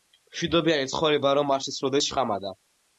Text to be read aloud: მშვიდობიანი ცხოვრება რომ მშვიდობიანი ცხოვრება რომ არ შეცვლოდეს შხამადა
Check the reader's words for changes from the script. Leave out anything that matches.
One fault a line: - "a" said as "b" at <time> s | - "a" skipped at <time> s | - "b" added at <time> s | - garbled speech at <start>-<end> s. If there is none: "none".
- "მშვიდობიანი ცხოვრება რომ" skipped at 1.5 s